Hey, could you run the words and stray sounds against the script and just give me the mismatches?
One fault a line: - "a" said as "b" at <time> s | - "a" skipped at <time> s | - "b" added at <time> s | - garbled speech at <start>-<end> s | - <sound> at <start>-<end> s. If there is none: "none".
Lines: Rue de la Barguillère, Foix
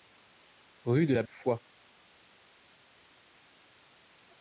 - "Barguillère" skipped at 1.2 s